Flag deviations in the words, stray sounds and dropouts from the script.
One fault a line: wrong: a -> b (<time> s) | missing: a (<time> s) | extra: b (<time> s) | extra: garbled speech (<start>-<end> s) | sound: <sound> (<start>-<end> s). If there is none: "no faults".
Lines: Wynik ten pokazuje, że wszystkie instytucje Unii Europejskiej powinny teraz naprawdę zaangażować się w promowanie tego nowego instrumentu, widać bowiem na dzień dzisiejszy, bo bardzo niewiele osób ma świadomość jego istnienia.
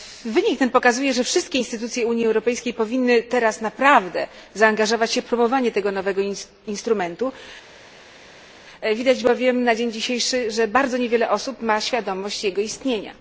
wrong: bo -> że (10.5 s)